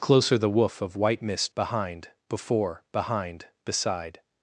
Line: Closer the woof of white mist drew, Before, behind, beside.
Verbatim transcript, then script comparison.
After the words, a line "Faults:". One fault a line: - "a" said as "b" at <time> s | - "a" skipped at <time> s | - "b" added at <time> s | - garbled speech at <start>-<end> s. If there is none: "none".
Closer the woof of white mist behind, Before, behind, beside.
Faults:
- "drew" said as "behind" at 1.5 s